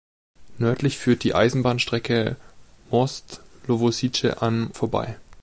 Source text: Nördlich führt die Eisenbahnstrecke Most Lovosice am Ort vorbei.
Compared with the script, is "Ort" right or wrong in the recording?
wrong